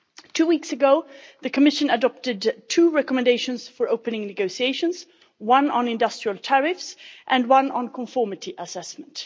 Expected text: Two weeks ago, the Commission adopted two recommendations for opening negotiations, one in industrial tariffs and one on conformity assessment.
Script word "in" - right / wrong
wrong